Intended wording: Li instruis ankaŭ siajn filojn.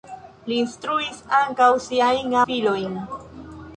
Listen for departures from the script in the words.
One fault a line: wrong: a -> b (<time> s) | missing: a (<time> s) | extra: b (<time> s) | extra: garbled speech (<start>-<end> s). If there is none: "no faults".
no faults